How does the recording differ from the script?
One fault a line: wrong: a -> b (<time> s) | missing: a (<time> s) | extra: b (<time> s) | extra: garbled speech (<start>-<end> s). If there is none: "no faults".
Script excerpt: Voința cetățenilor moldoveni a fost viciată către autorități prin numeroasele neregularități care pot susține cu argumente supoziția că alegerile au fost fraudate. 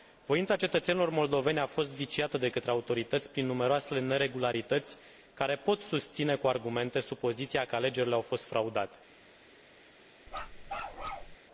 extra: de (2.4 s)